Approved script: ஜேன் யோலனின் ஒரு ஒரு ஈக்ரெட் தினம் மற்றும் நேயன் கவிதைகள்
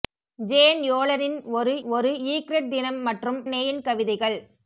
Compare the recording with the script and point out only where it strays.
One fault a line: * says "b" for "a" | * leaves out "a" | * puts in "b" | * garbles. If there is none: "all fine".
all fine